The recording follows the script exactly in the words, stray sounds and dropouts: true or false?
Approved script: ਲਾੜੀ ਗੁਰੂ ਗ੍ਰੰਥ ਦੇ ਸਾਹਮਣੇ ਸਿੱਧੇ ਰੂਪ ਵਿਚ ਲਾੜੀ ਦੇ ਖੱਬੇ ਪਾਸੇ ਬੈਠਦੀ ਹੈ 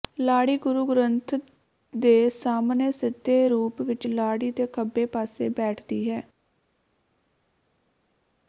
true